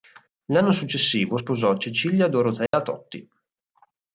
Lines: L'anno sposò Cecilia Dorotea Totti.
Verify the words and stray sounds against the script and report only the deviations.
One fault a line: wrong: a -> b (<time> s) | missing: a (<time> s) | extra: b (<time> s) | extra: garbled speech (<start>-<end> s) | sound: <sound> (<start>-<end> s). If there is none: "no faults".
extra: successivo (0.7 s)
sound: dropout (2.7-2.7 s)